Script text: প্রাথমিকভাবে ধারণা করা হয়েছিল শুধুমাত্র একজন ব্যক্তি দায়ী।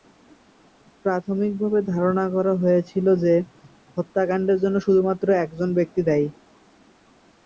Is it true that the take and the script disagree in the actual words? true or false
true